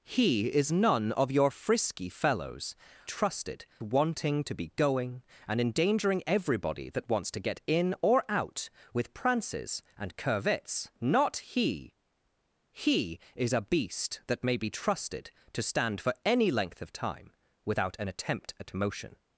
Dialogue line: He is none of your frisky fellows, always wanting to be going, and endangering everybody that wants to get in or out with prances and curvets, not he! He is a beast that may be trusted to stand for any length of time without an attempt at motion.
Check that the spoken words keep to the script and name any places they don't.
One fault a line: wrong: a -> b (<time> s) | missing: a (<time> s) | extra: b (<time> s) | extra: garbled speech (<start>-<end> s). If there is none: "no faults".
wrong: always -> trusted (3.0 s)